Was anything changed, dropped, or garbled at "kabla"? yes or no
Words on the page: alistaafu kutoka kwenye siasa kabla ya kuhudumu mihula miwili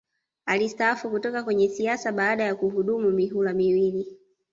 yes